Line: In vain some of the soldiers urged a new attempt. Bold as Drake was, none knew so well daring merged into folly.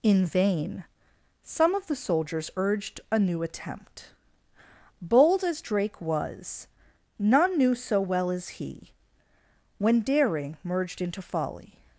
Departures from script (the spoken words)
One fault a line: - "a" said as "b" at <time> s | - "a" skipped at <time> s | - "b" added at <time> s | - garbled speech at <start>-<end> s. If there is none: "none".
- "as he when" added at 8.3 s